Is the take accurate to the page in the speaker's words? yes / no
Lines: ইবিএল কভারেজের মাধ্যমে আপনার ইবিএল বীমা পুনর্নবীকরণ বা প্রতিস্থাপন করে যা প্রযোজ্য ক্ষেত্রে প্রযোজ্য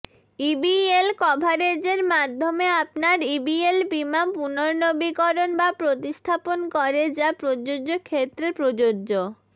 yes